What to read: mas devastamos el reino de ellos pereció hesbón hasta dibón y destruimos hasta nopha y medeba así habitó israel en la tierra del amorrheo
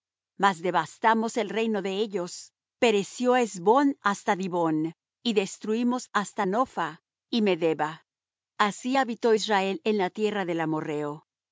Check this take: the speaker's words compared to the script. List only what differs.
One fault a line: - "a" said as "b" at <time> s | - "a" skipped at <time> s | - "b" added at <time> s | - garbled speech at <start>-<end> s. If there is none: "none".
none